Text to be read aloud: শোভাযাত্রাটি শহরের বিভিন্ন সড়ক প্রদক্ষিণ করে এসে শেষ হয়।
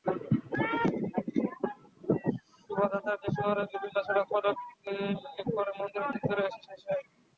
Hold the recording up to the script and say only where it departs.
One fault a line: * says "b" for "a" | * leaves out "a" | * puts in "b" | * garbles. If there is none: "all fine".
* puts in "মন্দিরের চত্বরে"